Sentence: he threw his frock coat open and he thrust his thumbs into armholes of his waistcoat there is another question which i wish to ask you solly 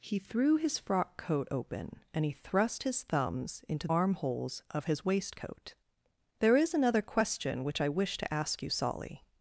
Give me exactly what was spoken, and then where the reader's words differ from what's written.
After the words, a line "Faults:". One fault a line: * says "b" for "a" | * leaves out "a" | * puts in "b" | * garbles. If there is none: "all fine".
he threw his frock coat open and he thrust his thumbs into armholes of his waistcoat there is another question which i wish to ask you solly
Faults:
all fine